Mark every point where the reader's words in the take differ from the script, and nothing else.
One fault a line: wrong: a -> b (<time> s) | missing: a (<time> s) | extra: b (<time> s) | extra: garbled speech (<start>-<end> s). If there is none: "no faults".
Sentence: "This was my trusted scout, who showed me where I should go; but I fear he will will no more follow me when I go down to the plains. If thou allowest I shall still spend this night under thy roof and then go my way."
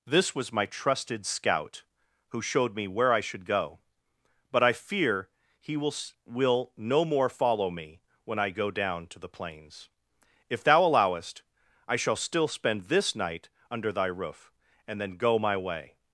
no faults